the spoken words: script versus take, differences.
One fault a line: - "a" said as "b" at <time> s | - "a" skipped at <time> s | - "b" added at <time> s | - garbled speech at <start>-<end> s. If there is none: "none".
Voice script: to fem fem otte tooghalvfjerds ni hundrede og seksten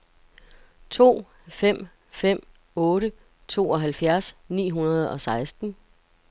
none